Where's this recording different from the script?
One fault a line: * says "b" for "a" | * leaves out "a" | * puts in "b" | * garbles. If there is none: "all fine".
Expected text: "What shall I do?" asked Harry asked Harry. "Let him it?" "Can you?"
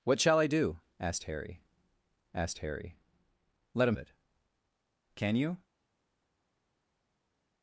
all fine